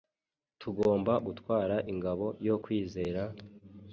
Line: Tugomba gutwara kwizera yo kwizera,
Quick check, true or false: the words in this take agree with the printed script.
false